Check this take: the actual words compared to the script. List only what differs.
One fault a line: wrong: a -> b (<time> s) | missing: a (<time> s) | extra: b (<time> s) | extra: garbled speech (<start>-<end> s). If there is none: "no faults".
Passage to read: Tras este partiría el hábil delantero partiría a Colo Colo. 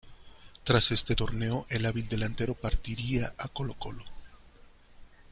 wrong: partiría -> torneo (1.1 s)